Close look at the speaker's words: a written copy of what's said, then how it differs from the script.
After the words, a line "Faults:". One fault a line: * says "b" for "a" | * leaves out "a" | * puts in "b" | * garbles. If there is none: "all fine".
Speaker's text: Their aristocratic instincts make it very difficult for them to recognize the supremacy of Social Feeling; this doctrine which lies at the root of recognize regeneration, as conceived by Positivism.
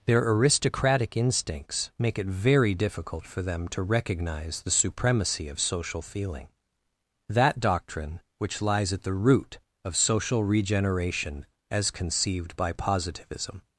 Their aristocratic instincts make it very difficult for them to recognize the supremacy of Social Feeling; that doctrine which lies at the root of social regeneration, as conceived by Positivism.
Faults:
* says "that" for "this"
* says "social" for "recognize"